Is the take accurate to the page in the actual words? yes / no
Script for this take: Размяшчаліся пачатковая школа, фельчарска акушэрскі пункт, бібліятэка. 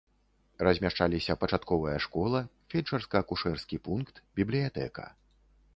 yes